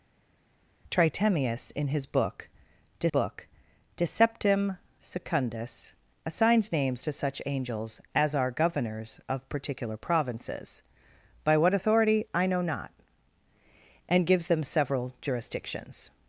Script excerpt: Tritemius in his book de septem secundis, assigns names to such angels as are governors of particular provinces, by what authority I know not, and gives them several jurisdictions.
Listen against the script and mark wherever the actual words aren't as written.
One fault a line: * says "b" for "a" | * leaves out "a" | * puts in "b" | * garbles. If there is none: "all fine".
* puts in "book de"